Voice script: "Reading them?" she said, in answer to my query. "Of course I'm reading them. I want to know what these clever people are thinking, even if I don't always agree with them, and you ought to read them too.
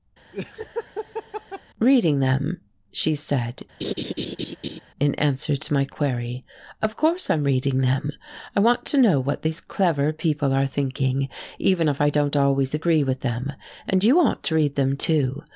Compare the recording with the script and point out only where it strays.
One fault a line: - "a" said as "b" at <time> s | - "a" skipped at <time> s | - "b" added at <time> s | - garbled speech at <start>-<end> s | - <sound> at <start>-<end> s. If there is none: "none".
- laugh at 0.3-1.6 s
- laugh at 3.8-4.8 s